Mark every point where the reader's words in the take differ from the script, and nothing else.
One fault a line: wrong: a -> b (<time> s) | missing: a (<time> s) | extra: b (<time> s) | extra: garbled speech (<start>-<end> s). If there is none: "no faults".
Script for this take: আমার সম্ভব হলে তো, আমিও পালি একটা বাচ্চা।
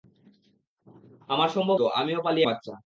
missing: হলে (1.8 s)
missing: একটা (2.4 s)